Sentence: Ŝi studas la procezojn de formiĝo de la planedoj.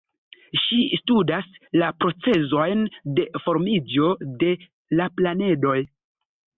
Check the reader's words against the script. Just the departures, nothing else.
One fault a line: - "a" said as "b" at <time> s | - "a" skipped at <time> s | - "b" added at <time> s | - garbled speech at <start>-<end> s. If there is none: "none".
none